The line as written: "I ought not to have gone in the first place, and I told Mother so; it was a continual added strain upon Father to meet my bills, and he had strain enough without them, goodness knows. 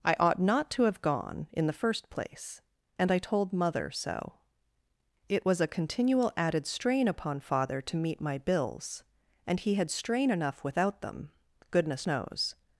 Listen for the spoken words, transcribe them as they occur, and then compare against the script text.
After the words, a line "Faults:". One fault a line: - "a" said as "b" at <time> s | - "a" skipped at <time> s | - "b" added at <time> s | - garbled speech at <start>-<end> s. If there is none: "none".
"I ought not to have gone in the first place, and I told Mother so; it was a continual added strain upon Father to meet my bills, and he had strain enough without them, goodness knows.
Faults:
none